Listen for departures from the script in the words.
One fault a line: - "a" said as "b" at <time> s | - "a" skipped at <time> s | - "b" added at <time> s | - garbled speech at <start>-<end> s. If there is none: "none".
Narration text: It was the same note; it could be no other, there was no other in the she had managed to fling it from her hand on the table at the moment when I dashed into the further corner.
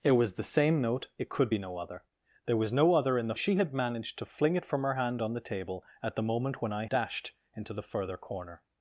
none